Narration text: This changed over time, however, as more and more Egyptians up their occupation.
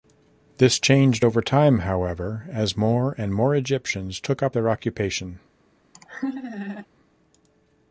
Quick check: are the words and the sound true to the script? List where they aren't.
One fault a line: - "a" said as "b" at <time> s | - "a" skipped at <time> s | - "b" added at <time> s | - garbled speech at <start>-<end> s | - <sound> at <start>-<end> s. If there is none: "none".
- "took" added at 4.2 s
- laugh at 5.9-6.9 s